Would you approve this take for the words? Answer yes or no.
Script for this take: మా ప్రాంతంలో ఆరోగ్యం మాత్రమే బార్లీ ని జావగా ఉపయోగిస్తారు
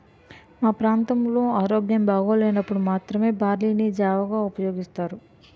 no